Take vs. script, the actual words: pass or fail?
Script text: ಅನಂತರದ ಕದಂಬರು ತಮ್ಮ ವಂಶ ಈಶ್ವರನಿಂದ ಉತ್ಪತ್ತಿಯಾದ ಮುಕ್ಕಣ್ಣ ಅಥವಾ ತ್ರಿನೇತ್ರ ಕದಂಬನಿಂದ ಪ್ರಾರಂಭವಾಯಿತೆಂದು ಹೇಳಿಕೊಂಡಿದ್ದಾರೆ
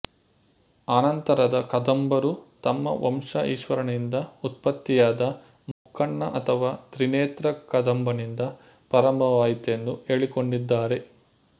pass